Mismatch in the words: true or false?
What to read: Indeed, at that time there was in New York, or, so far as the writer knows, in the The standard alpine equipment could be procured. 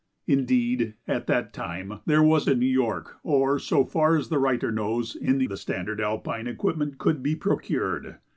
false